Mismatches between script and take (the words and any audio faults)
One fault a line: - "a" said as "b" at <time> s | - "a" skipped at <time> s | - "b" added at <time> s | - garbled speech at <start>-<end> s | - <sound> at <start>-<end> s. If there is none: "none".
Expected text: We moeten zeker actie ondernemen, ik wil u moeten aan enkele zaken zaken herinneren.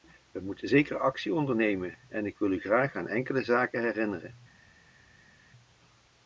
- "en" added at 2.1 s
- "moeten" said as "graag" at 2.6 s
- "zaken" skipped at 3.8 s